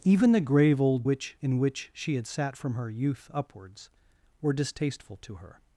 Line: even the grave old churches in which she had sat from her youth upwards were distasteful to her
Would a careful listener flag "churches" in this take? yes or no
yes